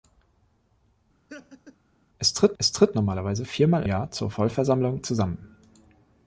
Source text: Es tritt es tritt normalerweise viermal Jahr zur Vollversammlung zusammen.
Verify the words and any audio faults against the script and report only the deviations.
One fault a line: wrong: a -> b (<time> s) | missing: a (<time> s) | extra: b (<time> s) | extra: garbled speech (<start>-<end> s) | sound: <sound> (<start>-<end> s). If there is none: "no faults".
sound: laugh (1.3-1.8 s)